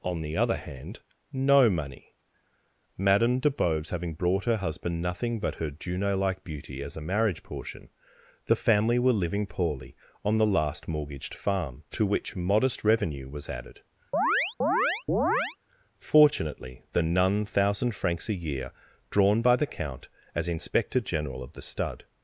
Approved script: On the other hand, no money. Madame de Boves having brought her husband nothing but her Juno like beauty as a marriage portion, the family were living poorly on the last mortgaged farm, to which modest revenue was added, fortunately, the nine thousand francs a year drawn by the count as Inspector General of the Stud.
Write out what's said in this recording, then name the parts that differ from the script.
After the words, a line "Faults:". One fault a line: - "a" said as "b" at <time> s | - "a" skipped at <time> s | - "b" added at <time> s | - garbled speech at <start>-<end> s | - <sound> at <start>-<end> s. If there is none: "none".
On the other hand, no money. Madame de Boves having brought her husband nothing but her Juno like beauty as a marriage portion, the family were living poorly on the last mortgaged farm, to which modest revenue was added, fortunately, the none thousand francs a year drawn by the count as Inspector General of the Stud.
Faults:
- chirp at 14.1-15.6 s
- "nine" said as "none" at 17.0 s